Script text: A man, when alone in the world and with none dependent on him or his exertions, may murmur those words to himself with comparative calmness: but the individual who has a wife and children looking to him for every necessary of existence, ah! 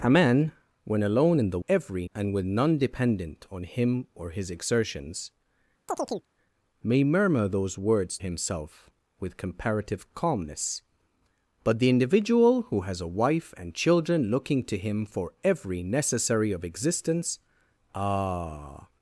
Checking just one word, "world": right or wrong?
wrong